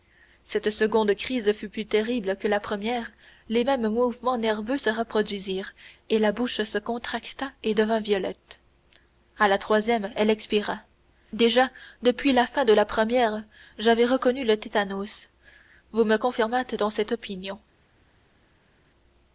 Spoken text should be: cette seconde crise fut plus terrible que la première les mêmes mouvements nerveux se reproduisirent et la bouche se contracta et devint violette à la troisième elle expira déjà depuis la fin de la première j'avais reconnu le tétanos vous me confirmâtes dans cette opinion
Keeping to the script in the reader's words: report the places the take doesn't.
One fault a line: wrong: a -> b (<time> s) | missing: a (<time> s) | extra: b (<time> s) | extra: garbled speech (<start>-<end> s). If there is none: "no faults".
no faults